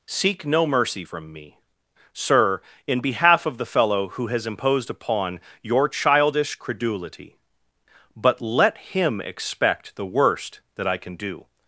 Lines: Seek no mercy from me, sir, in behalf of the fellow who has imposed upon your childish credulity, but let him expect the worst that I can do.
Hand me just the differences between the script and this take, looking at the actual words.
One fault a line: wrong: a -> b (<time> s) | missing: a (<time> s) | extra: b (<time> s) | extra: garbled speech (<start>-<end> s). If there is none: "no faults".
no faults